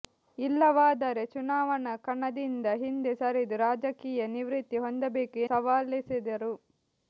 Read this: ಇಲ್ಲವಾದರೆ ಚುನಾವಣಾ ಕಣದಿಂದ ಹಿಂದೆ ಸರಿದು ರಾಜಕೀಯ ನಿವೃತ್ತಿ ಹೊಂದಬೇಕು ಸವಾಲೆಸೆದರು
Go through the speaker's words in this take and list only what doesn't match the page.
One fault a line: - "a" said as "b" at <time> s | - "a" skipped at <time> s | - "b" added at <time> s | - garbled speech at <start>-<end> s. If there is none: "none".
none